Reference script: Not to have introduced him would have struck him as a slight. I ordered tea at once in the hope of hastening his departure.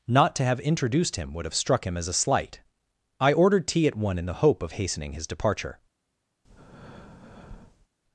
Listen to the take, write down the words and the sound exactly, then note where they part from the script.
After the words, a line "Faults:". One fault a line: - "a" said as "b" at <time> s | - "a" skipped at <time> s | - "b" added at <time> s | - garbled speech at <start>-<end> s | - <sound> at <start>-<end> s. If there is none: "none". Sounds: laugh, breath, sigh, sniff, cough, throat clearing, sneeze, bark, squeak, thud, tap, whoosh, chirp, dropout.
Not to have introduced him would have struck him as a slight. I ordered tea at one in the hope of hastening his departure.
Faults:
- "once" said as "one" at 4.0 s
- breath at 6.4-7.9 s